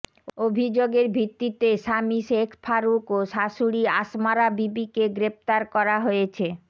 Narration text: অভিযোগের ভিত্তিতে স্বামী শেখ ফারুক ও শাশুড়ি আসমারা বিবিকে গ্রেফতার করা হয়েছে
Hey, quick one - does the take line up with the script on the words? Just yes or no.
yes